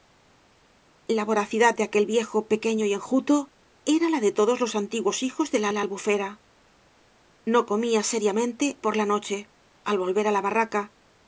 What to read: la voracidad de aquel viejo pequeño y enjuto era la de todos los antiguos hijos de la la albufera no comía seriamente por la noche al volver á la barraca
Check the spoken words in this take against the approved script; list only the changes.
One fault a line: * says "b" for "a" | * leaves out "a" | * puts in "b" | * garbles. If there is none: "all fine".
all fine